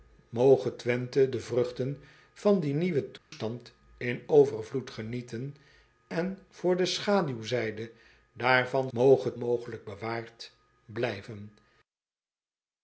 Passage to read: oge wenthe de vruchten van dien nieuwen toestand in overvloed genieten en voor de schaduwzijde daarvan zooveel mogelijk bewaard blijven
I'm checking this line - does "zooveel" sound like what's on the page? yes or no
no